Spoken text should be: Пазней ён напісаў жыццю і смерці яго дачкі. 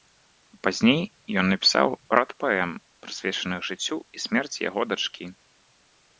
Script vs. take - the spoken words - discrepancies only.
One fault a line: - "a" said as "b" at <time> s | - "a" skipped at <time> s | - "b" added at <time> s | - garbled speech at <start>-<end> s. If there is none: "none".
- "рад паэм прысвечаных" added at 2.2 s